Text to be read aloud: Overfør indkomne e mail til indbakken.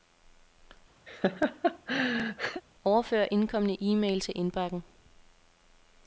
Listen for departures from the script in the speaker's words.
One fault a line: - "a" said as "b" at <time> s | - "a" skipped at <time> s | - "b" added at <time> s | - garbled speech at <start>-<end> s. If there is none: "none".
none